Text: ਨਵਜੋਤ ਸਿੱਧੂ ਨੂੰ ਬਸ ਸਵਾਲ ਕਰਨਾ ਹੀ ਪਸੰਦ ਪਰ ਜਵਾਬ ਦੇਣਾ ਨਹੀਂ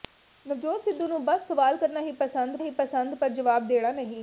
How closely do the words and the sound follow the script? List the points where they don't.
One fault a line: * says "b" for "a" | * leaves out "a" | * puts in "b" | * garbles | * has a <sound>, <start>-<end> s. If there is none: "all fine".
* puts in "ਹੀ ਪਸੰਦ"